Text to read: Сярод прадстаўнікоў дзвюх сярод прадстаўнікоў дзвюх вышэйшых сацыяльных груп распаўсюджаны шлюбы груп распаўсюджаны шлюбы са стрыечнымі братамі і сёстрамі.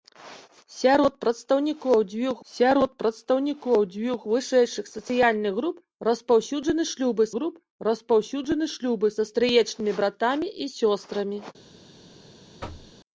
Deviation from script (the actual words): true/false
false